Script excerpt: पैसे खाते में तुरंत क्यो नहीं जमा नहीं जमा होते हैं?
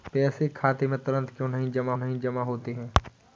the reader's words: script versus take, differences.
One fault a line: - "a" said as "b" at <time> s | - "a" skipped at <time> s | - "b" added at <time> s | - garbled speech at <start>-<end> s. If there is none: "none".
none